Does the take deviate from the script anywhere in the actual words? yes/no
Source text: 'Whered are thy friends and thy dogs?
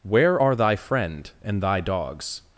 yes